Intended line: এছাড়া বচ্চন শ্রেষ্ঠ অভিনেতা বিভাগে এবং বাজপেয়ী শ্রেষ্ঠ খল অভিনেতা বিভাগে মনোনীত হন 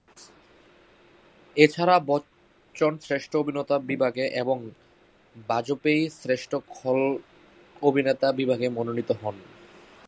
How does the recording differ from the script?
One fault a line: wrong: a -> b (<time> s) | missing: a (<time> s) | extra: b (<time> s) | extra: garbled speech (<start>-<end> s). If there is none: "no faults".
no faults